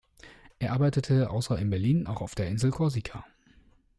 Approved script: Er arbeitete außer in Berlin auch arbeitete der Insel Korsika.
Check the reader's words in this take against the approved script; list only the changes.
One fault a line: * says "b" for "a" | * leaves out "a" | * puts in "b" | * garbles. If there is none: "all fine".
* says "auf" for "arbeitete"